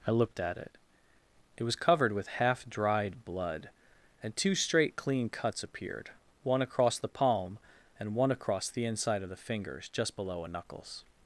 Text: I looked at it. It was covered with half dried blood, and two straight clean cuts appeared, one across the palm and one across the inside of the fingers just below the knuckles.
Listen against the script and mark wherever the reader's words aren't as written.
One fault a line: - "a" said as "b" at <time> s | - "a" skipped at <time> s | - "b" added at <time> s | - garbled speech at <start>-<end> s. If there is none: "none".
- "the" said as "a" at 10.4 s